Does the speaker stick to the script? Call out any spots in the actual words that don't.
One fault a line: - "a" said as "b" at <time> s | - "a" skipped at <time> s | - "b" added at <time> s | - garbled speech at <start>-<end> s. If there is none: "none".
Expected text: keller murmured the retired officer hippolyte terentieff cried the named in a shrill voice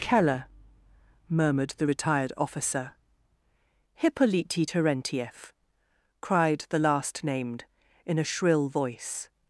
- "last" added at 6.8 s